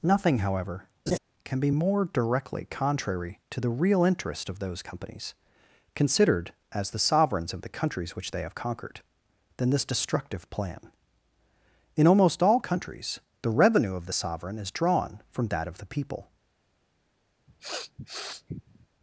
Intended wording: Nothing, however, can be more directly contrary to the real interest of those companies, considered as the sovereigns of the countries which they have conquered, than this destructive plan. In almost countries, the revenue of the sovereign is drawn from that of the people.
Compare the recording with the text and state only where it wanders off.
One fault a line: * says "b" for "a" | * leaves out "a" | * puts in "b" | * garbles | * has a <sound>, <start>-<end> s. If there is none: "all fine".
* has a laugh, 1.1-1.2 s
* puts in "all"
* has a sniff, 17.5-18.9 s